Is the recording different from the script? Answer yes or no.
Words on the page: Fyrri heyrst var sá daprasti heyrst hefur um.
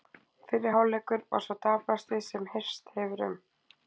yes